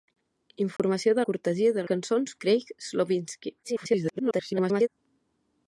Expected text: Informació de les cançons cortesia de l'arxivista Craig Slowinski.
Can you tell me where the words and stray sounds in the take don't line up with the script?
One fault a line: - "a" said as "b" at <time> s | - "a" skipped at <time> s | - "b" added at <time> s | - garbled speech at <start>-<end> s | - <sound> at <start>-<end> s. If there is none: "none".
- dropout at 0.8-0.8 s
- "les cançons" skipped at 1.2 s
- "l'arxivista" said as "cançons" at 1.9 s
- garbled speech at 3.6-4.9 s